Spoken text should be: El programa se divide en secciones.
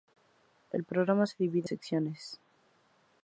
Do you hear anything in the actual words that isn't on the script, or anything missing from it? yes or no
yes